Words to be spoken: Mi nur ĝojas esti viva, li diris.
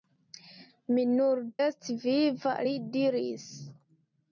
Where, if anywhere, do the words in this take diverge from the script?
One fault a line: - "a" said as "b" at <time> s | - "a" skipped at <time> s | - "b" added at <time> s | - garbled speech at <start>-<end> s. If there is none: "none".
- "ĝojas" skipped at 1.4 s